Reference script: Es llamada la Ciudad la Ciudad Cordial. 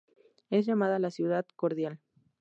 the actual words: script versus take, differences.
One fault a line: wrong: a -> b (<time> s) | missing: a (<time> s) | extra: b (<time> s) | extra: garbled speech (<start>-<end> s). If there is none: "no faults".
missing: la Ciudad (1.4 s)